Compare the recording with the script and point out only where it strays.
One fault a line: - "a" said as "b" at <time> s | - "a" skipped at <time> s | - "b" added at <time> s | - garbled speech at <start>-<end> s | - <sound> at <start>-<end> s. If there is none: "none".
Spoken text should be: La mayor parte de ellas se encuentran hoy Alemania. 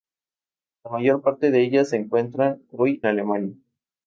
none